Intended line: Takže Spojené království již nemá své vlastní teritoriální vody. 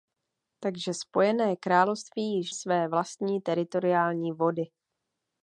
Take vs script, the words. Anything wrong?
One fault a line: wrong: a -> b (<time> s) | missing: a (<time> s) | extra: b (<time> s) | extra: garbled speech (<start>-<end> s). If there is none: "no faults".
missing: nemá (2.5 s)